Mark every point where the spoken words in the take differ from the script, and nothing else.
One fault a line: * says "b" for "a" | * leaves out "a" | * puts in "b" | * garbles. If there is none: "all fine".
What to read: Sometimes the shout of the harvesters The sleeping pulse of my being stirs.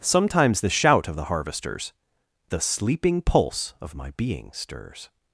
all fine